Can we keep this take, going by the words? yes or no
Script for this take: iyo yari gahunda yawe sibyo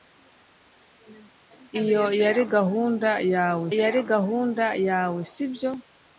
no